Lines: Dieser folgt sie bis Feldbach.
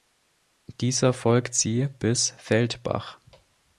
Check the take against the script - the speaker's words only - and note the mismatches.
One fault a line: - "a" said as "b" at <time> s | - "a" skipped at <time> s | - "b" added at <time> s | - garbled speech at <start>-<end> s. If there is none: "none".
none